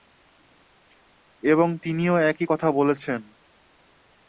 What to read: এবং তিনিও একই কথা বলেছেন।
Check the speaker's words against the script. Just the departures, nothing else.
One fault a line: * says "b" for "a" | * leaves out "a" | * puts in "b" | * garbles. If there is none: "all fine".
all fine